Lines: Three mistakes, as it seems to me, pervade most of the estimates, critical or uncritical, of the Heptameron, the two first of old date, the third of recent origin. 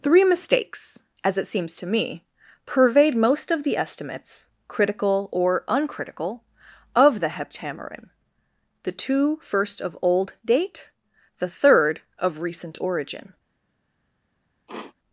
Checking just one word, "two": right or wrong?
right